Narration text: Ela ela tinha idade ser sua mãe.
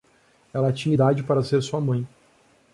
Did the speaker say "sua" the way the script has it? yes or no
yes